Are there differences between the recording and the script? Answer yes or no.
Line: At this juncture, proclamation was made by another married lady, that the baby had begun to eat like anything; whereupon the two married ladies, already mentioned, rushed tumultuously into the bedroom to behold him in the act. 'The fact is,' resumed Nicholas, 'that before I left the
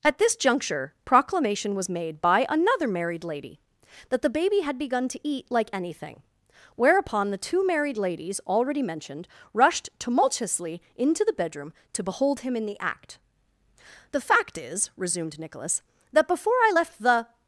no